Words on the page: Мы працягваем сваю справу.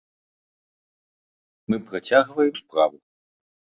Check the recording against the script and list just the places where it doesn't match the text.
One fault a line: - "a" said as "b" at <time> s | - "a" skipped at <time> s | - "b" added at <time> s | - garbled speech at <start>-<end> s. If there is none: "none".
- "сваю" skipped at 2.6 s